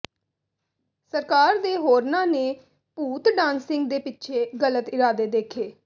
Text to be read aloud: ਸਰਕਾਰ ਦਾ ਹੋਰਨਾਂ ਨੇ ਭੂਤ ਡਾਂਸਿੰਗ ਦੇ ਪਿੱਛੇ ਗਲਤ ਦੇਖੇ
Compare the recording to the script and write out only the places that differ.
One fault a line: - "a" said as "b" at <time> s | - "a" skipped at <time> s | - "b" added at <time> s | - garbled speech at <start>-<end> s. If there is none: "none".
- "ਦਾ" said as "ਦੇ" at 1.6 s
- "ਇਰਾਦੇ" added at 4.9 s